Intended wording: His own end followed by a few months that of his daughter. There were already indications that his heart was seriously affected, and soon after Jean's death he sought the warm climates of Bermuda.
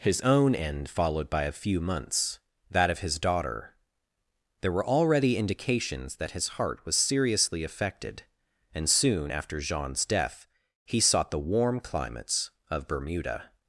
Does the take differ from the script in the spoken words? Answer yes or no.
no